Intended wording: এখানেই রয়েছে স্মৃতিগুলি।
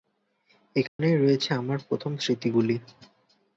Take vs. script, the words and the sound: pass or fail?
fail